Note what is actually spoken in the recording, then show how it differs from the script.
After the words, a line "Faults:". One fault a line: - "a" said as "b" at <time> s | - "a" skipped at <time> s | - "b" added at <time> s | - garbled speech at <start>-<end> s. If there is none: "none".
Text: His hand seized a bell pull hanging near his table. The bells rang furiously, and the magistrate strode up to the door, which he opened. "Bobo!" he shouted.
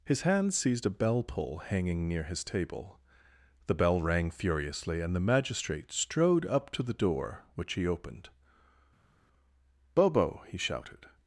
His hand seized a bell pull hanging near his table. The bell rang furiously, and the magistrate strode up to the door, which he opened. "Bobo!" he shouted.
Faults:
- "bells" said as "bell" at 3.8 s